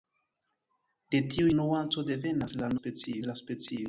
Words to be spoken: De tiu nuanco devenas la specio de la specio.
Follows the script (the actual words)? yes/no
yes